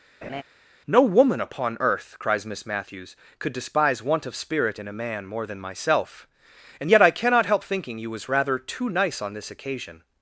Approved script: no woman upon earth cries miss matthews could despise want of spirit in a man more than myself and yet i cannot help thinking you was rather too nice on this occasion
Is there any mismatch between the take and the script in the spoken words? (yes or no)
no